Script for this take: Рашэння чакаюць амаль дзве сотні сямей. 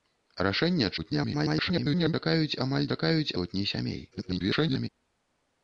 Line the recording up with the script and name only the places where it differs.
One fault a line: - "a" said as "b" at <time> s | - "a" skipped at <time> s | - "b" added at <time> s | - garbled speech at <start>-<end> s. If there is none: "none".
- garbled speech at 1.0-2.1 s
- "дзве" said as "чакаюць" at 2.9 s
- garbled speech at 4.1-4.9 s